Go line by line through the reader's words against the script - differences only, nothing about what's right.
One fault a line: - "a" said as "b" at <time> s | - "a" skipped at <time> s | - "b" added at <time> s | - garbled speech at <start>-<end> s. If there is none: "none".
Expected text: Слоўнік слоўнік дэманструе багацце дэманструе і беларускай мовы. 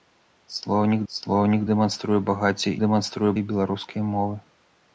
none